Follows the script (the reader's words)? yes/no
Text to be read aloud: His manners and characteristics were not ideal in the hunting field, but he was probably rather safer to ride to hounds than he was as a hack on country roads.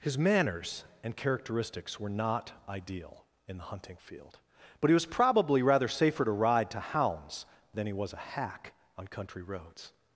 no